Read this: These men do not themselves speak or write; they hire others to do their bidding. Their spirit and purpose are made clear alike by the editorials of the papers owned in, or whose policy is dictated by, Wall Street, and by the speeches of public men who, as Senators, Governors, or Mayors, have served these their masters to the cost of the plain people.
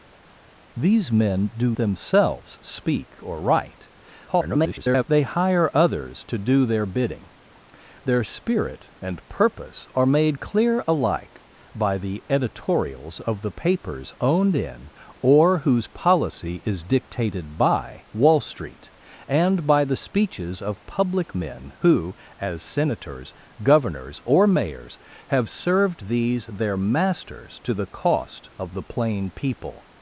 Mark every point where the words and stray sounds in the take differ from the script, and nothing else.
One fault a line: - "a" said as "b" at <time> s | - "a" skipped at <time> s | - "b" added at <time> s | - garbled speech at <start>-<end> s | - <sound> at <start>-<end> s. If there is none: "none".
- "not" skipped at 1.8 s
- garbled speech at 4.3-5.0 s